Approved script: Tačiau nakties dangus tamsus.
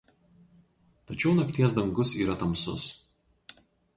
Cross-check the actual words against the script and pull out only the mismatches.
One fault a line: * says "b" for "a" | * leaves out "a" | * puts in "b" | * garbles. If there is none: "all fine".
* puts in "yra"